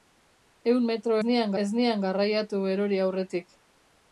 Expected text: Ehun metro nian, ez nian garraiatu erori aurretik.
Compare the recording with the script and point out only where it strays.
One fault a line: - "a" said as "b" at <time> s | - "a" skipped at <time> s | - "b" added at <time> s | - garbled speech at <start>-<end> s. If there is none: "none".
none